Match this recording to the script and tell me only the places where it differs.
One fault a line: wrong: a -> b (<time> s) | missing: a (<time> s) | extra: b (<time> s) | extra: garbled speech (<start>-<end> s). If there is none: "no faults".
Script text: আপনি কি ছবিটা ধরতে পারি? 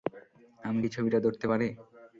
wrong: আপনি -> আমি (0.6 s)